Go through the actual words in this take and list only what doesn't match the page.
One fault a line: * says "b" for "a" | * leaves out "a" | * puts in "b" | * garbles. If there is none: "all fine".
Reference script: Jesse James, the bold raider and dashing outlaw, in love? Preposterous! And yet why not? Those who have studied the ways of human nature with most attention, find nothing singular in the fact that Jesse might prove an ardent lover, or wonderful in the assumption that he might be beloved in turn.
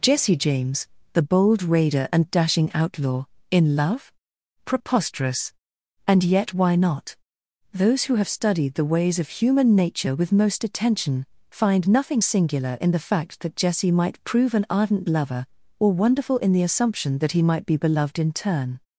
all fine